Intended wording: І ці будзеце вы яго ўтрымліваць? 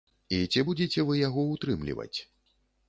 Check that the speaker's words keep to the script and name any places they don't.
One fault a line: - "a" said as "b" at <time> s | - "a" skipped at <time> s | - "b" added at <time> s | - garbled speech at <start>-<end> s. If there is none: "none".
none